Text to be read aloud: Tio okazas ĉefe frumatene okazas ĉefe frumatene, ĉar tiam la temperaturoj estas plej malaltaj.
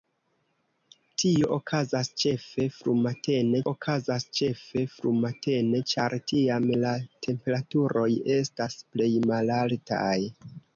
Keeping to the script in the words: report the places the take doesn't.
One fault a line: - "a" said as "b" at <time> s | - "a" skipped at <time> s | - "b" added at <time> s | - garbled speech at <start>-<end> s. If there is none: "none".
none